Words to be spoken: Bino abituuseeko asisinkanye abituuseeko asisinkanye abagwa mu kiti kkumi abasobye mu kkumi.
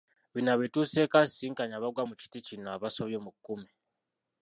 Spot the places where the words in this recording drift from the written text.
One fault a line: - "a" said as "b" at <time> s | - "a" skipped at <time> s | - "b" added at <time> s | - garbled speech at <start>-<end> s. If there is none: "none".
- "abituuseeko asisinkanye" skipped at 1.8 s
- "kkumi" said as "kino" at 2.5 s